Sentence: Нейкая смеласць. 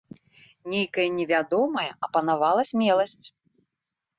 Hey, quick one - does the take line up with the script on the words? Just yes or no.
no